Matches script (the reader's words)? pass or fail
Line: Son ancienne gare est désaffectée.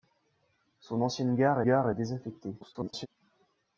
fail